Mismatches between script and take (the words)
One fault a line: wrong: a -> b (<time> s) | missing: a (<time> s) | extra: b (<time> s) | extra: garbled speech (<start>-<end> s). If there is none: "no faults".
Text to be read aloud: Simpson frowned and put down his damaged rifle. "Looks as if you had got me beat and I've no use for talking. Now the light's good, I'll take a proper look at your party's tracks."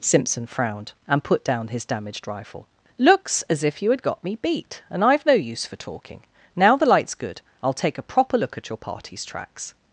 no faults